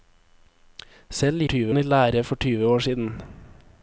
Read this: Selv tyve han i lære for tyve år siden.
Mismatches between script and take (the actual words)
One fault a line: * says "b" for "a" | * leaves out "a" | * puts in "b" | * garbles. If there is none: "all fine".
all fine